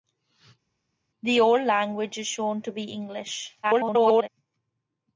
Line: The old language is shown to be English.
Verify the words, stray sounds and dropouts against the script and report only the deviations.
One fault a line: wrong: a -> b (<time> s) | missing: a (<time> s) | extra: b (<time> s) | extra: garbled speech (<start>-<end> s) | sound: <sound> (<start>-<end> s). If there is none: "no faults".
extra: garbled speech (3.6-4.3 s)